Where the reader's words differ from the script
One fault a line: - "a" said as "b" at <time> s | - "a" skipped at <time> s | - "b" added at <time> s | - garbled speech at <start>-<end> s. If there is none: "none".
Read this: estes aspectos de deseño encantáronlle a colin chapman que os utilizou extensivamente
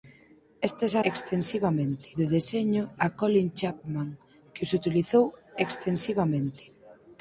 - "aspectos" said as "extensivamente" at 1.1 s
- "encantáronlle" skipped at 2.8 s